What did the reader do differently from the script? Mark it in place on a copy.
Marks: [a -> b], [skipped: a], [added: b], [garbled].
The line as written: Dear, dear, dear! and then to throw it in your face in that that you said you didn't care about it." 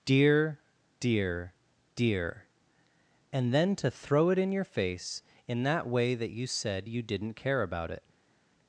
Dear, dear, dear! and then to throw it in your face in that [added: way] that you said you didn't care about it."